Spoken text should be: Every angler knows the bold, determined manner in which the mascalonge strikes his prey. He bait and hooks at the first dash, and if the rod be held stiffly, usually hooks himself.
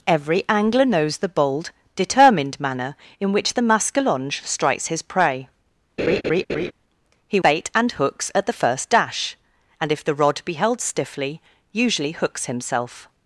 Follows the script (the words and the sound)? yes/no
no